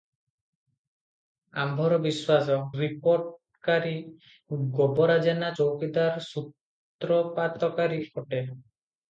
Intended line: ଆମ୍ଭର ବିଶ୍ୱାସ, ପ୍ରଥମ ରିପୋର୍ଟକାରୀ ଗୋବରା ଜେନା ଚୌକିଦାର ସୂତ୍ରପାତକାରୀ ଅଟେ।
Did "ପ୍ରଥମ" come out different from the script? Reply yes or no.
yes